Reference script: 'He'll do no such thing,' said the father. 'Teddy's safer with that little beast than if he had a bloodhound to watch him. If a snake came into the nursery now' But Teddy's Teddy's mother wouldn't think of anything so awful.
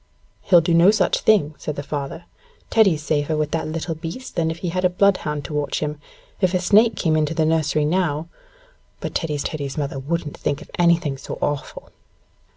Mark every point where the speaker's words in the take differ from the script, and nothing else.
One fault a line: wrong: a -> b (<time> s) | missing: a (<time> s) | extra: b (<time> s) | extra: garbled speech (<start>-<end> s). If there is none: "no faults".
no faults